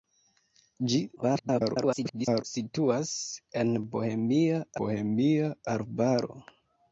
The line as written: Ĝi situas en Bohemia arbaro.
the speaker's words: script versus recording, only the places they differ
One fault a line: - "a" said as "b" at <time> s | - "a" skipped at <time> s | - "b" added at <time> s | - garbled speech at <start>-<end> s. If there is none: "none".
- garbled speech at 1.2-2.4 s
- "Bohemia" added at 4.8 s